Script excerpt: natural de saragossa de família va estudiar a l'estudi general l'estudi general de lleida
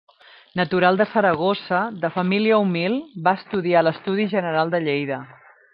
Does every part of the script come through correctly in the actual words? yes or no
no